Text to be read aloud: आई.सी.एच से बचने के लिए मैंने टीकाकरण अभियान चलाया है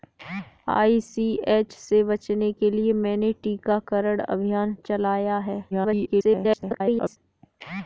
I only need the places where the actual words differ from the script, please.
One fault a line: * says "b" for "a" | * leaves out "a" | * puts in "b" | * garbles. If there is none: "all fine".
* garbles